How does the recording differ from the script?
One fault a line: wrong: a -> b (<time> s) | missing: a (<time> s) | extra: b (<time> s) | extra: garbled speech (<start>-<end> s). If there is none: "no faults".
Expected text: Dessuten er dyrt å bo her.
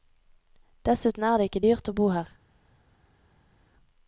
extra: det ikke (1.4 s)